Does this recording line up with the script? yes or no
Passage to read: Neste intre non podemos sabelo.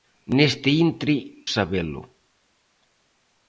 no